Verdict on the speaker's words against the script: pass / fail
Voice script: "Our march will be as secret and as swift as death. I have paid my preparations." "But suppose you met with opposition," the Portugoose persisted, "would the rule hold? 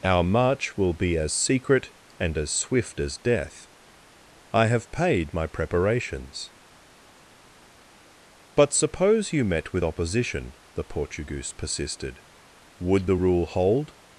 pass